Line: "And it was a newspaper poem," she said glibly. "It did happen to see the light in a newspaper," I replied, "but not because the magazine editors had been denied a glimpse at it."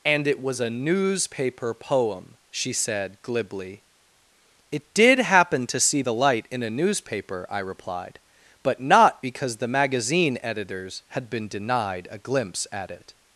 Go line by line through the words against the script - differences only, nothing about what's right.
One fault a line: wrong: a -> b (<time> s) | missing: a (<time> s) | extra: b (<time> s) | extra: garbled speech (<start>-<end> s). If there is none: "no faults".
no faults